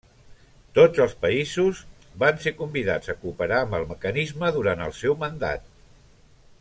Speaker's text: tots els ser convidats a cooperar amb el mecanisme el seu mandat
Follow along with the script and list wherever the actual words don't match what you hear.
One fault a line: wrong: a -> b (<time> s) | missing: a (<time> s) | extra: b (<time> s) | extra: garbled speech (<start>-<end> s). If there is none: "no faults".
extra: països van (1.2 s)
extra: durant (4.6 s)